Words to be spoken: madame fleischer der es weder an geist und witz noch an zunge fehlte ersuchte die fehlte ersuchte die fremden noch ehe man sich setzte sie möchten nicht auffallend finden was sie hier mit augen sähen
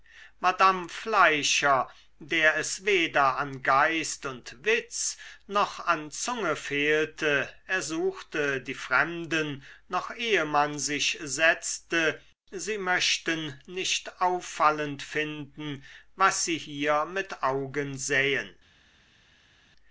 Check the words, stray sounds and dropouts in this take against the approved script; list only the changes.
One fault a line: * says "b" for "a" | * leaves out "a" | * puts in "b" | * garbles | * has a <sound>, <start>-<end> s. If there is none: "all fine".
* leaves out "fehlte ersuchte die"